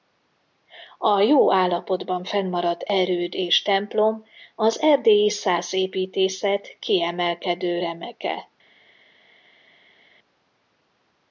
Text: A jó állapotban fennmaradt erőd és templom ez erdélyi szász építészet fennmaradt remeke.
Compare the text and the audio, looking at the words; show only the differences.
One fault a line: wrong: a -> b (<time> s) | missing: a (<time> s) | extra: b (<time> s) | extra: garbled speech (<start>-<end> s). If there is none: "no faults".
wrong: ez -> az (4.5 s)
wrong: fennmaradt -> kiemelkedő (6.8 s)